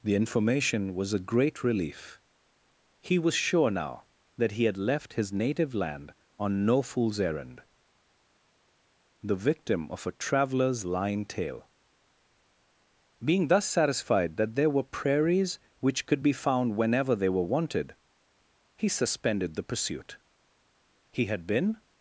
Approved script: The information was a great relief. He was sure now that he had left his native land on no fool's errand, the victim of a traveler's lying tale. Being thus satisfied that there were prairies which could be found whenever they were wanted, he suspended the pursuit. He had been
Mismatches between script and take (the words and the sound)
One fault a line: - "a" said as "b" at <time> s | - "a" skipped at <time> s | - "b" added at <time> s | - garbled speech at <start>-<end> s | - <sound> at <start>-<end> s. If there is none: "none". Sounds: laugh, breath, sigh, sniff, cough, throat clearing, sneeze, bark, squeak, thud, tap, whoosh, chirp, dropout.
none